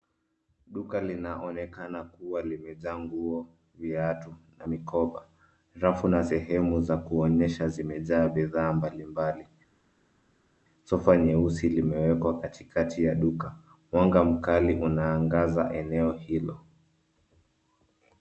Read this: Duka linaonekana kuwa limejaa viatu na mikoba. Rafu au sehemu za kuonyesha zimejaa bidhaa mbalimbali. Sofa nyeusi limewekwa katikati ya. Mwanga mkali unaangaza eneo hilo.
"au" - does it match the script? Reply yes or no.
no